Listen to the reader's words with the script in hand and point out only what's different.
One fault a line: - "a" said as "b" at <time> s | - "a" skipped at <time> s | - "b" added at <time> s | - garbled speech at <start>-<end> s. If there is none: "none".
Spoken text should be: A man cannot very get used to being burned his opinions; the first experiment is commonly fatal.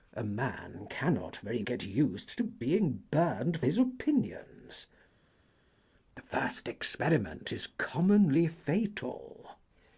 none